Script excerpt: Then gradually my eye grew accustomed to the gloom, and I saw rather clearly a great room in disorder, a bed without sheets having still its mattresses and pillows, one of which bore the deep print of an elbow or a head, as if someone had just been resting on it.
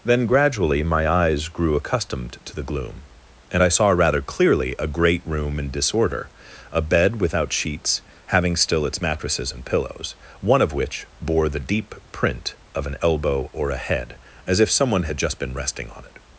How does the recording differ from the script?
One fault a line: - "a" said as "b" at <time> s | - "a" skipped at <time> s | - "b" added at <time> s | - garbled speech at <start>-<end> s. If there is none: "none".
- "eye" said as "eyes" at 1.1 s